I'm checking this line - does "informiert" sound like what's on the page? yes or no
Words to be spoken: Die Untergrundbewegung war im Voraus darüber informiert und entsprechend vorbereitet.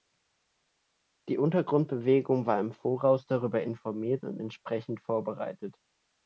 yes